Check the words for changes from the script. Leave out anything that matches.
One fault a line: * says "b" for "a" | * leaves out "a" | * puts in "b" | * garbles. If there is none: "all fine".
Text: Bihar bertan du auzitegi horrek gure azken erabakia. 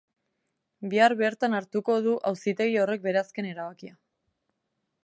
* puts in "hartuko"
* says "bere" for "gure"